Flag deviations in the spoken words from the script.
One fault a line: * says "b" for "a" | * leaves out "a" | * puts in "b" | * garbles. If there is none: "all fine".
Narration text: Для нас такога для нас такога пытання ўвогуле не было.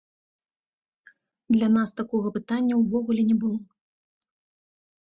* leaves out "для нас такога"